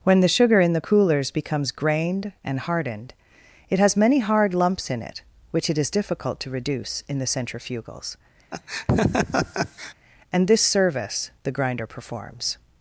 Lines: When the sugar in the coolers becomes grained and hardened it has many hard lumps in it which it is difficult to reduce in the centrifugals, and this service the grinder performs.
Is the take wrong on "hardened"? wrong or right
right